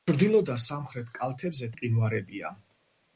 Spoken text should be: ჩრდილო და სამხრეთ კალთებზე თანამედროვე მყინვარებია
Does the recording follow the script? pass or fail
fail